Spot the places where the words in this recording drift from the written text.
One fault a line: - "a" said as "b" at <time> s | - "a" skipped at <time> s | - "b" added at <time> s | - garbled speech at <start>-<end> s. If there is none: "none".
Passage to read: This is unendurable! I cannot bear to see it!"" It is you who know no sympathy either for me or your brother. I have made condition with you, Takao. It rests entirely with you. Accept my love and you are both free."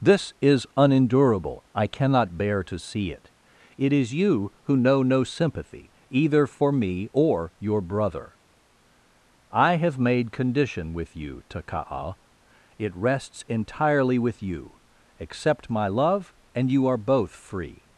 none